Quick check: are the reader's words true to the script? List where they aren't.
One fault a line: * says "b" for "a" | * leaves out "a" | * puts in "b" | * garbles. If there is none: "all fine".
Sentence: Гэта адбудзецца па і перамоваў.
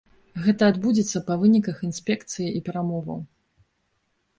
* puts in "выніках інспекцыі"